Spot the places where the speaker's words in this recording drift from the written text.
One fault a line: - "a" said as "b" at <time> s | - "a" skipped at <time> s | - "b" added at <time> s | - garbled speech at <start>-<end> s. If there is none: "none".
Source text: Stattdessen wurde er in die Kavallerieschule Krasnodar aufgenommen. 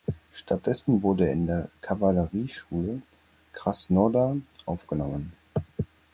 none